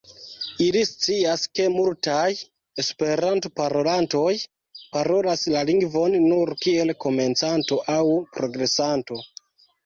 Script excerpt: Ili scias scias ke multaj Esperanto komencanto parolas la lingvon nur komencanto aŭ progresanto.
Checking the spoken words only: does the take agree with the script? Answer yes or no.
no